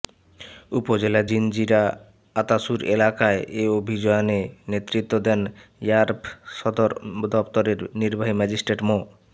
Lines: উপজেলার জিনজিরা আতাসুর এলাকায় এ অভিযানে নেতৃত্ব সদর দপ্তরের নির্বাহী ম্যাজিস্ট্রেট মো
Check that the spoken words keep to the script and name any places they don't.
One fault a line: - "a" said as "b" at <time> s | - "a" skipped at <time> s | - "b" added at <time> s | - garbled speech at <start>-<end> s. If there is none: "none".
- "দেন র্যাব" added at 5.3 s